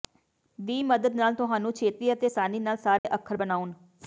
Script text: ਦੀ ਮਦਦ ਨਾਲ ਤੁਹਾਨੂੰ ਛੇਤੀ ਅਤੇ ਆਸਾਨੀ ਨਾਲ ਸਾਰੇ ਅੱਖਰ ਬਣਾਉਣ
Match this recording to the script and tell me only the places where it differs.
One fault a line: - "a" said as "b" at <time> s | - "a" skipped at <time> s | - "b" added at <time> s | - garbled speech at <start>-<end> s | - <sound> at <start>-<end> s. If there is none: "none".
- dropout at 3.0-3.0 s